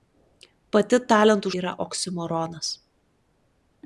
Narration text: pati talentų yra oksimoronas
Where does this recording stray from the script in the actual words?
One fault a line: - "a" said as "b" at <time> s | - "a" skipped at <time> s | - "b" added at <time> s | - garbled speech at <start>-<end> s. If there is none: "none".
none